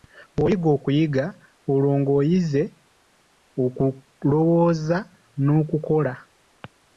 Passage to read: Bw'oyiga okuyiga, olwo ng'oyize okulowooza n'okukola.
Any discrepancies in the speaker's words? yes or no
no